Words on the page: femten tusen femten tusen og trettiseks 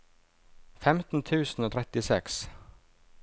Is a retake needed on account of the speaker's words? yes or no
yes